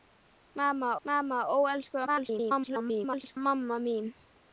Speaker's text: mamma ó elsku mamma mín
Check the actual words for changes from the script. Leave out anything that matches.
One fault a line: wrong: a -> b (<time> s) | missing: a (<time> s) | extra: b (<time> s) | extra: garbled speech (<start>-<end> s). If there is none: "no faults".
extra: mamma (1.1 s)
extra: garbled speech (2.1-3.4 s)